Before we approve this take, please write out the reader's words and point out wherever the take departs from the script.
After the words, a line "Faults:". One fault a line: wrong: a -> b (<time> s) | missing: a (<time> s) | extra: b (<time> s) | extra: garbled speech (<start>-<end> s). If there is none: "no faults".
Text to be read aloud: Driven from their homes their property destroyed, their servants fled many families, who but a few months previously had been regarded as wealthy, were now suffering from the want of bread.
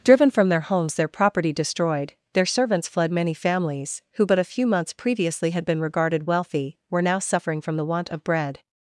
Driven from their homes their property destroyed, their servants fled many families, who but a few months previously had been regarded wealthy, were now suffering from the want of bread.
Faults:
missing: as (6.3 s)